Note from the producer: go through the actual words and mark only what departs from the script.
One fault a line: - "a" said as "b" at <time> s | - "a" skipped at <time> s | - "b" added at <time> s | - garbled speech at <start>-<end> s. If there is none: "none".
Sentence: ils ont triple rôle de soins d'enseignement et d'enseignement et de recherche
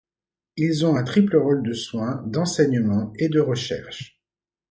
- "un" added at 0.9 s
- "d'enseignement et" skipped at 3.3 s